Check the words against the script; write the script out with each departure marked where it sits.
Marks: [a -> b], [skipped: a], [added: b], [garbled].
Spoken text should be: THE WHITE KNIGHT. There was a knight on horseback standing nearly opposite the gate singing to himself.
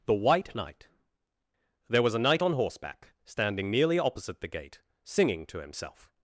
THE WHITE KNIGHT. There was a knight on horseback standing nearly opposite the gate singing to himself.